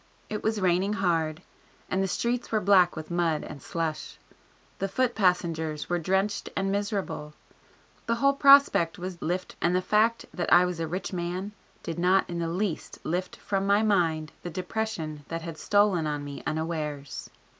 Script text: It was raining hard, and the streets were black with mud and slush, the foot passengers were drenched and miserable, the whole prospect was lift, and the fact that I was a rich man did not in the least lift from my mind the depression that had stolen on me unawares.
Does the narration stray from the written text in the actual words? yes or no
no